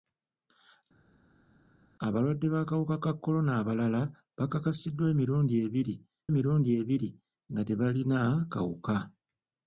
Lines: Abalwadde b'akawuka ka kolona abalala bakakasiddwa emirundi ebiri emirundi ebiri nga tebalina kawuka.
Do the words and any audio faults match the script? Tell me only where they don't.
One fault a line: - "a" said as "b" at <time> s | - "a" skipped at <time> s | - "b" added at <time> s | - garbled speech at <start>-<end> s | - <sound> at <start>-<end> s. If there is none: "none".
none